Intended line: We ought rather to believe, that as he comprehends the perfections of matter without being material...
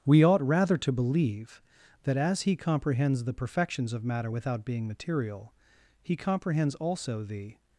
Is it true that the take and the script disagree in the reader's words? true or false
true